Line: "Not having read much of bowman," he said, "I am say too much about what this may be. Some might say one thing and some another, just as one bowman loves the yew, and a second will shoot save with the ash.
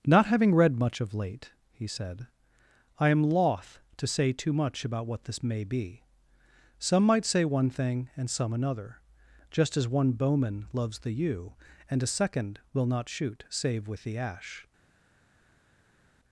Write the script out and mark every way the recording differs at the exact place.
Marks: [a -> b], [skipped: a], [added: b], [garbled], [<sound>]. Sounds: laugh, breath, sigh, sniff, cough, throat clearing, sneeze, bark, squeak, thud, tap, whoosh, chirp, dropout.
"Not having read much of [bowman," -> late] he said, "I am [added: loth to] say too much about what this may be. Some might say one thing and some another, just as one bowman loves the yew, and a second will [added: not] shoot save with the ash.